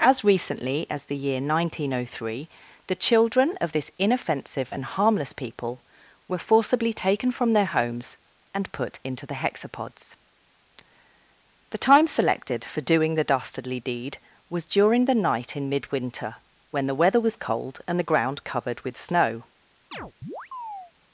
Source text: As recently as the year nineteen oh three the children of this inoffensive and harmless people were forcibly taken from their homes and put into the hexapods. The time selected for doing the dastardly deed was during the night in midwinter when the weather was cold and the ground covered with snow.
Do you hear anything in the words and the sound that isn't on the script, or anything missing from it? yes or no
yes